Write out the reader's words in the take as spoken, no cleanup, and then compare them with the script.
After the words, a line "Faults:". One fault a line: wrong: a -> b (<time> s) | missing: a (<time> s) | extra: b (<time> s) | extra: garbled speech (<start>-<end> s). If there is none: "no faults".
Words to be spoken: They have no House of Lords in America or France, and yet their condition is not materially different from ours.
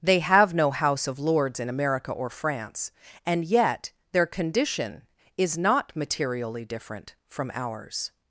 They have no House of Lords in America or France, and yet their condition is not materially different from ours.
Faults:
no faults